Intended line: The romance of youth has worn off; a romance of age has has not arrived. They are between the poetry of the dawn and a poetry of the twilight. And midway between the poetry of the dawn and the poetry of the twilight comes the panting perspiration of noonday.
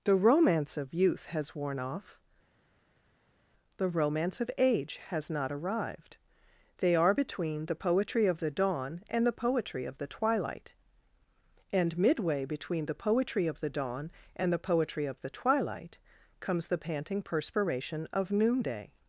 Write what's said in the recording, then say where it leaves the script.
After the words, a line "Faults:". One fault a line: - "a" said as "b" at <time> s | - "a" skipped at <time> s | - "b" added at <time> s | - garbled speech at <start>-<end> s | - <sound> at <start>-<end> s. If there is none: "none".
The romance of youth has worn off; the romance of age has not arrived. They are between the poetry of the dawn and the poetry of the twilight. And midway between the poetry of the dawn and the poetry of the twilight comes the panting perspiration of noonday.
Faults:
- "a" said as "the" at 3.8 s
- "has" skipped at 5.3 s
- "a" said as "the" at 9.2 s